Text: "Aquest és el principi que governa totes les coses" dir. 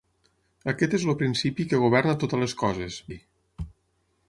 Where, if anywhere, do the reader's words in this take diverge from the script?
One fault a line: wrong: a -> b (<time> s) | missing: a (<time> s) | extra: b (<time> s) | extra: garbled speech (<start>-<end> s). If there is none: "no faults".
no faults